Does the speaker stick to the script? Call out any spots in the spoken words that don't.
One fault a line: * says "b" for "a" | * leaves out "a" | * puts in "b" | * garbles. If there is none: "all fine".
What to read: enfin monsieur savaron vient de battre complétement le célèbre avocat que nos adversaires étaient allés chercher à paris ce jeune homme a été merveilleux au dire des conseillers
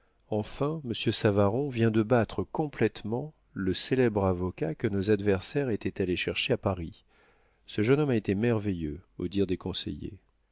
all fine